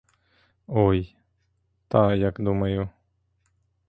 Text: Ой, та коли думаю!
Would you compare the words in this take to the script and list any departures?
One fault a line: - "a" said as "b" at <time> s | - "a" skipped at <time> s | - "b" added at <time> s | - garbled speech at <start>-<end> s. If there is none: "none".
- "коли" said as "як" at 2.1 s